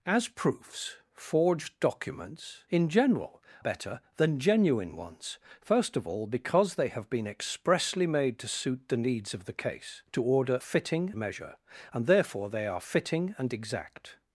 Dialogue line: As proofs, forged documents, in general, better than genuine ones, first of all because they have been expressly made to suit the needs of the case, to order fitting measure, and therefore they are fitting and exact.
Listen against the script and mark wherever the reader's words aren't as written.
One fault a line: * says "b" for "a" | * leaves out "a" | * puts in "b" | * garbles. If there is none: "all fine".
all fine